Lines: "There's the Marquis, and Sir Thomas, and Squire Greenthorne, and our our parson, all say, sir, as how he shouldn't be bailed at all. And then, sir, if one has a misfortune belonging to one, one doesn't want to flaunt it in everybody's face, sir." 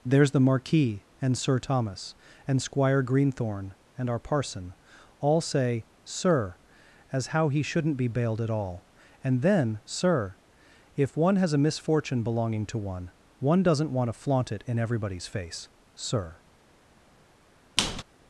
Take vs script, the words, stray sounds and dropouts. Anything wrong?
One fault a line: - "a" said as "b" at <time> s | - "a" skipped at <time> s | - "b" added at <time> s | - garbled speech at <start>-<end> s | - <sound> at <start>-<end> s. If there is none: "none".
- "our" skipped at 4.2 s
- squeak at 17.8-18.0 s